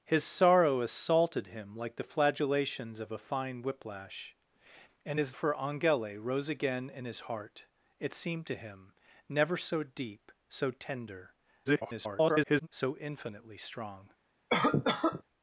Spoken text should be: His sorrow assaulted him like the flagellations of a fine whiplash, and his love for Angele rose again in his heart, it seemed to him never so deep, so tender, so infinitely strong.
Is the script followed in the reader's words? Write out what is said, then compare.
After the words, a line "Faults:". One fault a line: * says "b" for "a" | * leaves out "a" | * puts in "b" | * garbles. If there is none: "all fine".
His sorrow assaulted him like the flagellations of a fine whiplash, and his for Angele rose again in his heart, it seemed to him never so deep, so tender, [garbled] so infinitely strong.
Faults:
* leaves out "love"
* garbles